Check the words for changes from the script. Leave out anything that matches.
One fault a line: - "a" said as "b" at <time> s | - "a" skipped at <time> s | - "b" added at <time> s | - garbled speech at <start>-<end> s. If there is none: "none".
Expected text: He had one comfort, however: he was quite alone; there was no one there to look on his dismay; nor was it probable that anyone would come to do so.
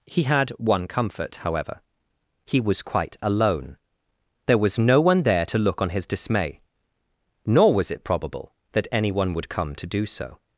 none